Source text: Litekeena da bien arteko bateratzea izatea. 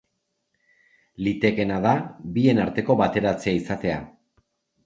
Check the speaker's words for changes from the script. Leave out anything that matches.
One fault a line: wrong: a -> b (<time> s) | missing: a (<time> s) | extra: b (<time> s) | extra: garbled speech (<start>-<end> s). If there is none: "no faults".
no faults